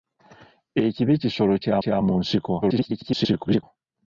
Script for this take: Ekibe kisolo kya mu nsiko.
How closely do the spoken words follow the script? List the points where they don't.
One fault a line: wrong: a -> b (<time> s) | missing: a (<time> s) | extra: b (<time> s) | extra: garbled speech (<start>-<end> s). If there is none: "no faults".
extra: kya (1.8 s)
extra: garbled speech (2.6-3.6 s)